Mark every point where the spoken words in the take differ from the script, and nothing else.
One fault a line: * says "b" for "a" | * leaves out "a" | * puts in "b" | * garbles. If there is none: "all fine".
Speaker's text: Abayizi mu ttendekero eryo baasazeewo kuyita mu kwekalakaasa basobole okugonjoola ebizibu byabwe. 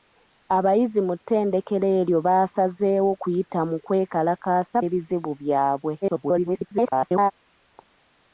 * leaves out "basobole okugonjoola"
* garbles